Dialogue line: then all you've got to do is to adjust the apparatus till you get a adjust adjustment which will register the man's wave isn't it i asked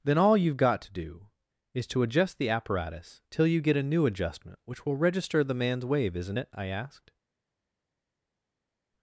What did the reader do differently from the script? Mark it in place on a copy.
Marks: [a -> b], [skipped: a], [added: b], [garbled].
then all you've got to do is to adjust the apparatus till you get a [adjust -> new] adjustment which will register the man's wave isn't it i asked